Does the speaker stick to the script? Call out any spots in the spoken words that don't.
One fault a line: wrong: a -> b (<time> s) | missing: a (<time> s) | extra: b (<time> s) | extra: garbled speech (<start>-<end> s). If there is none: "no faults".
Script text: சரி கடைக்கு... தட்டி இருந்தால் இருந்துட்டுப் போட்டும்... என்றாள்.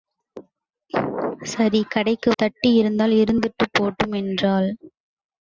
no faults